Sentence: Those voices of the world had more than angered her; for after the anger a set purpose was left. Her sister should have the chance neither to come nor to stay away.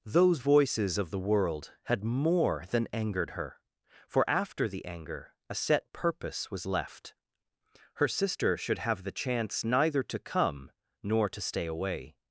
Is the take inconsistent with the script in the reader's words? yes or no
no